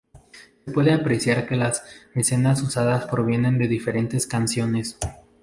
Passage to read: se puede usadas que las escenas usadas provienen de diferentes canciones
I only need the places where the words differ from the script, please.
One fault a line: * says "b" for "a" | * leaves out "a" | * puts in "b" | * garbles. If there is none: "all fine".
* says "apreciar" for "usadas"